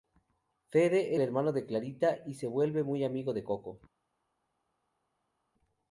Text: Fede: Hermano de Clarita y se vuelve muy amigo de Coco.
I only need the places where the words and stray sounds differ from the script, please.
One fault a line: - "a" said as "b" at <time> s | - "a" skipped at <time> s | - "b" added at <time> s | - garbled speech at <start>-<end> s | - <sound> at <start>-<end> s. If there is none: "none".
none